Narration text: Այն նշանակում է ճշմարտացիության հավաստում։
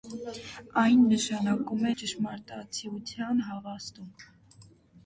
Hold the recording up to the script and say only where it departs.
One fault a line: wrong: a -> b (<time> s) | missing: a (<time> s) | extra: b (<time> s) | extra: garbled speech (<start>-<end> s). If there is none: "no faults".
no faults